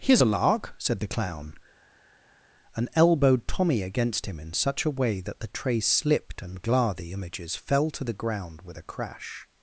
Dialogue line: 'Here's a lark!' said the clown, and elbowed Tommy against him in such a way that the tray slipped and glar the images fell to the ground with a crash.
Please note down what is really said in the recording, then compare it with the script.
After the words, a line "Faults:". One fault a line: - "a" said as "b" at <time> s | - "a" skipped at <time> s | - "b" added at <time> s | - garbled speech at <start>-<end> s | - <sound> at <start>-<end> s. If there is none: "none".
'Here's a lark!' said the clown, and elbowed Tommy against him in such a way that the tray slipped and glar the images fell to the ground with a crash.
Faults:
none